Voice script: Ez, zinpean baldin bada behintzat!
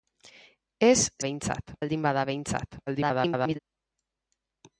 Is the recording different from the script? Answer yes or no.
yes